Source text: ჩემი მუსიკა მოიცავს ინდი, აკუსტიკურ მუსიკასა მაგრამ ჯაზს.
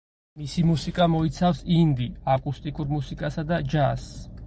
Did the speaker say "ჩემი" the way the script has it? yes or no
no